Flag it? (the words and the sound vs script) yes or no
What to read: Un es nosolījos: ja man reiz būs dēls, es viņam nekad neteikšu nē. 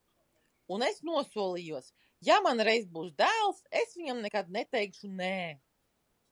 no